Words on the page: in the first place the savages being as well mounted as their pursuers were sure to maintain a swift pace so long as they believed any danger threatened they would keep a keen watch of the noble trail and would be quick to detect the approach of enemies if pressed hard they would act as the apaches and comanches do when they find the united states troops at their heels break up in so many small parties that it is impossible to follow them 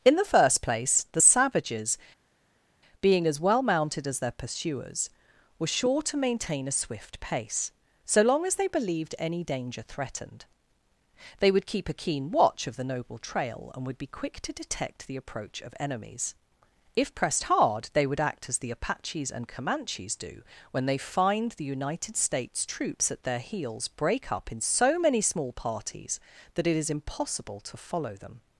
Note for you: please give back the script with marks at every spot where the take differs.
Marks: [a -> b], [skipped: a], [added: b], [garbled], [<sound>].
in the first place the savages being as well mounted as their pursuers were sure to maintain a swift pace so long as they believed any danger threatened they would keep a keen watch of the noble trail and would be quick to detect the approach of enemies if pressed hard they would act as the apaches and comanches do when they find the united states troops at their heels break up in so many small parties that it is impossible to follow them